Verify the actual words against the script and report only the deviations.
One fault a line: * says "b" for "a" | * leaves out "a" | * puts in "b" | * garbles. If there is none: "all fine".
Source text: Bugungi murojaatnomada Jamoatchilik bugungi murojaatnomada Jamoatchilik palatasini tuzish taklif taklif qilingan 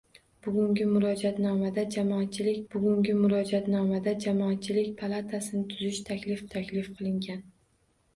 all fine